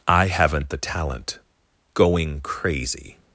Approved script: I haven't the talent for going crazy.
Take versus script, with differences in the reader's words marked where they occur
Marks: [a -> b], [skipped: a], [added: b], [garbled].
I haven't the talent [skipped: for] going crazy.